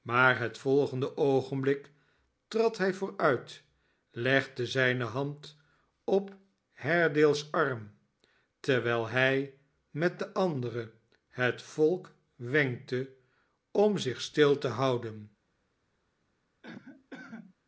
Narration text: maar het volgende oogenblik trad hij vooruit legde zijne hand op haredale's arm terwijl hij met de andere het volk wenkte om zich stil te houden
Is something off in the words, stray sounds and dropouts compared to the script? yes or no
yes